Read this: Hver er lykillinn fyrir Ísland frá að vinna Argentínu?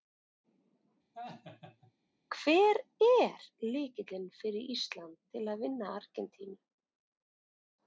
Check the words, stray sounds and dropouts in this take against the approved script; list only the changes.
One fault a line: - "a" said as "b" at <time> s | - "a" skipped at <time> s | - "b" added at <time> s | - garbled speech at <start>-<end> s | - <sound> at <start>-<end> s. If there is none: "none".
- laugh at 1.1-1.9 s
- "frá" said as "til" at 5.3 s